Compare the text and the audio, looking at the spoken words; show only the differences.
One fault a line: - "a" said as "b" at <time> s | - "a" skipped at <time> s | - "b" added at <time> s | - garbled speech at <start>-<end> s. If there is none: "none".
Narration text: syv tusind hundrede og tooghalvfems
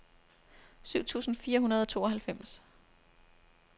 - "fire" added at 1.4 s